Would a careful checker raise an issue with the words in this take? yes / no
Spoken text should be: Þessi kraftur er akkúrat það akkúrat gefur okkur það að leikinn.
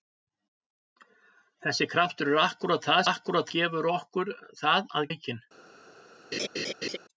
no